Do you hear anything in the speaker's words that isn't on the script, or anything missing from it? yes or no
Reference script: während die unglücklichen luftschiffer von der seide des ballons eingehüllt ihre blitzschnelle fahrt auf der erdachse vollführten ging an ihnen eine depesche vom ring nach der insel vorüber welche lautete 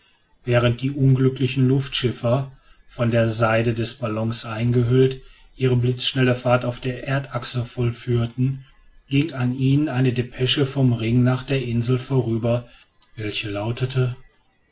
no